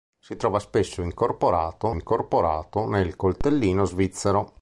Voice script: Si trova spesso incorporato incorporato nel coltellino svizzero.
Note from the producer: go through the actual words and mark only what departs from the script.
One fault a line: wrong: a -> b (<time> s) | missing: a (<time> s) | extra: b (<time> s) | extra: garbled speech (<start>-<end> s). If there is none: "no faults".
no faults